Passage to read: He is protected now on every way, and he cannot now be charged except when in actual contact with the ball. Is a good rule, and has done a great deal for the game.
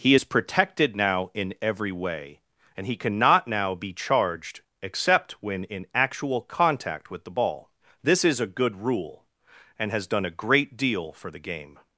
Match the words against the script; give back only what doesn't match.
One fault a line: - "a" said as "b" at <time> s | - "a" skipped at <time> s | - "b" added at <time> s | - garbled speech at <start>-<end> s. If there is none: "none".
- "on" said as "in" at 1.3 s
- "This" added at 8.0 s